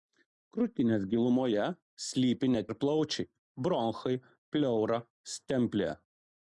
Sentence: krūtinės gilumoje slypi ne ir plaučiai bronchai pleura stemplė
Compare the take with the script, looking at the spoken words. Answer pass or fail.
pass